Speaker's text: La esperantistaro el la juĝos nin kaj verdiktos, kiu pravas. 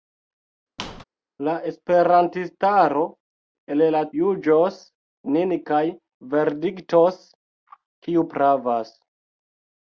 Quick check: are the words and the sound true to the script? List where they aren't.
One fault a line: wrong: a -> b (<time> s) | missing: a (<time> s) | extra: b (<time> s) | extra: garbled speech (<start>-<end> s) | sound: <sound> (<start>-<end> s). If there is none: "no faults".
sound: squeak (0.8-1.0 s)